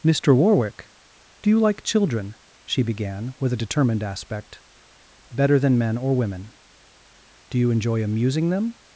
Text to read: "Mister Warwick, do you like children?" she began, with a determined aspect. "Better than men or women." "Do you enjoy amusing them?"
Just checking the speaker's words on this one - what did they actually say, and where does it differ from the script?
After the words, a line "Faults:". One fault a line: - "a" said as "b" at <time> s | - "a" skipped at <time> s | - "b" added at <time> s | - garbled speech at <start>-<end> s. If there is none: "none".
"Mister Warwick, do you like children?" she began, with a determined aspect. "Better than men or women." "Do you enjoy amusing them?"
Faults:
none